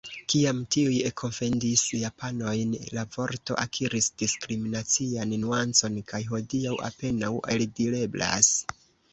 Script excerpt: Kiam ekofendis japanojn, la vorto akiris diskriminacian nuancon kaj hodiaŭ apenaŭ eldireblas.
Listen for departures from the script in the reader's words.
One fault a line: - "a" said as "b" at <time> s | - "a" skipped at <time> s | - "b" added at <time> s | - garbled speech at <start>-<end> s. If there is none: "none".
- "tiuj" added at 0.8 s